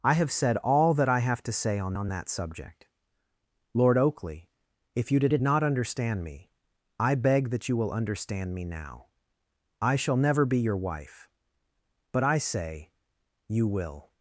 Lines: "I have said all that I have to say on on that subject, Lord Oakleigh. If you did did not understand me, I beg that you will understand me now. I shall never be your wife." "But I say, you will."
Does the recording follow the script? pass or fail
pass